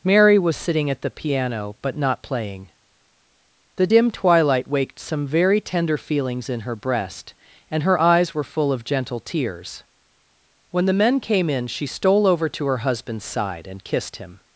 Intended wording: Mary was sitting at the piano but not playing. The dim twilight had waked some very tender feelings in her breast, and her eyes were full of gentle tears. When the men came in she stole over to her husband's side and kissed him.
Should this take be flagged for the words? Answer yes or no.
yes